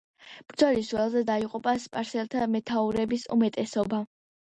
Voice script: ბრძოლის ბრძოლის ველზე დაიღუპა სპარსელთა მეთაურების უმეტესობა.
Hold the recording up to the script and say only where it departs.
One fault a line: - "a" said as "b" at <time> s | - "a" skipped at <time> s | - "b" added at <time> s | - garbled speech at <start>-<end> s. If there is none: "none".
- "ბრძოლის" skipped at 0.9 s